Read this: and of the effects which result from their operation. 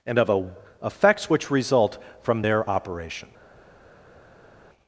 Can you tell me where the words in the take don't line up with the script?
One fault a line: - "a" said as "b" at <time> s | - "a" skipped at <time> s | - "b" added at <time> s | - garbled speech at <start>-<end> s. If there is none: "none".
- "the" said as "a" at 0.3 s